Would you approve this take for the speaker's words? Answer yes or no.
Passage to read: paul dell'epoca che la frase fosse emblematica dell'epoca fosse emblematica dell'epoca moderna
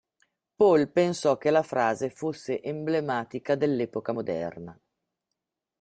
no